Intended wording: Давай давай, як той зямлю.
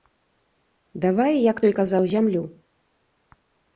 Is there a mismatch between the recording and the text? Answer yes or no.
yes